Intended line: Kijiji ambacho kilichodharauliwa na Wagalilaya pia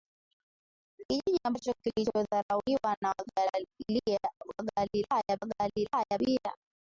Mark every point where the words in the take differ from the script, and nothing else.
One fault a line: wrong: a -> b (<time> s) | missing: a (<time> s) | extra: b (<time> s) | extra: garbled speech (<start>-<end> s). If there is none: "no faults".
extra: Wagalilaya (5.4 s)